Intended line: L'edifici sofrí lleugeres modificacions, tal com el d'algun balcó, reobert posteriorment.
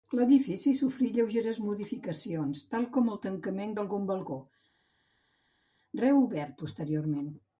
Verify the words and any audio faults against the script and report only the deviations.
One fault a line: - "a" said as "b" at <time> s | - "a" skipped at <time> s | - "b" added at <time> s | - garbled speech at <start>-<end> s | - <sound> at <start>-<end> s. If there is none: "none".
- "tancament" added at 3.3 s